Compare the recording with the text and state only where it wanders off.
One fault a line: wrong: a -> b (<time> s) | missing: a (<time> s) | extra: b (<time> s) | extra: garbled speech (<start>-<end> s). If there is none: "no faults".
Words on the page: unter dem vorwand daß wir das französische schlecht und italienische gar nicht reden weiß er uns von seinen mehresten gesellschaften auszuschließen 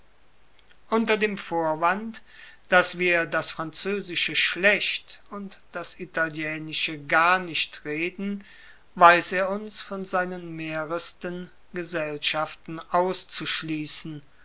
extra: das (5.7 s)